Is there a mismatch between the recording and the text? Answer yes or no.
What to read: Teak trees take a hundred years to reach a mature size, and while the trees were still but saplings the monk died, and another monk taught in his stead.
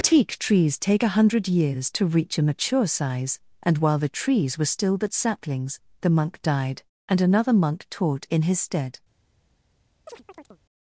no